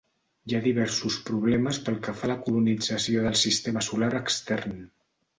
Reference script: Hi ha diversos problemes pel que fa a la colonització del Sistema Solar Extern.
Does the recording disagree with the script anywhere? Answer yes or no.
no